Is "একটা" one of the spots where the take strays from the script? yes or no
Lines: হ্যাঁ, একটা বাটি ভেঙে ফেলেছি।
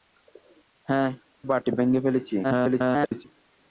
yes